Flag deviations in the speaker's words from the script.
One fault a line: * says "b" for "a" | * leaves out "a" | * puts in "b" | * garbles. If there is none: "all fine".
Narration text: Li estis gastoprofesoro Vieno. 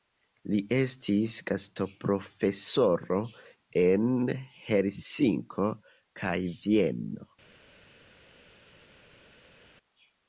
* puts in "en Helsinko kaj"